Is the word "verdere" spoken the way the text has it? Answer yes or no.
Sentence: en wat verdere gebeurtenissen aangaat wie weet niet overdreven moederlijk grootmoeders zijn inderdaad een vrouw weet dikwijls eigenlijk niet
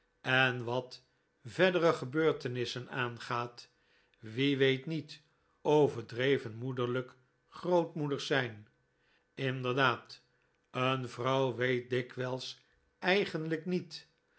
yes